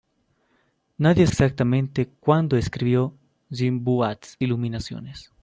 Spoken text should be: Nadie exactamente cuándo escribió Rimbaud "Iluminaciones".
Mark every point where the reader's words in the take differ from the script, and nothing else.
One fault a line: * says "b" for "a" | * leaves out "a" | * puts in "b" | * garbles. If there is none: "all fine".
all fine